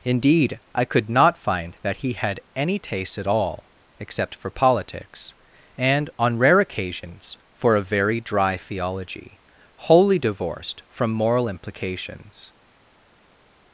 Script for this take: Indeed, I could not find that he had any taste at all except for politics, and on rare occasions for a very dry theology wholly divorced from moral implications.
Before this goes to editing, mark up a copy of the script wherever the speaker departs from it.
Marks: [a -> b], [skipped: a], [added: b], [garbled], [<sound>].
Indeed, I could not find that he had any taste at all except for politics, and on rare occasions for a very dry theology wholly divorced from moral implications.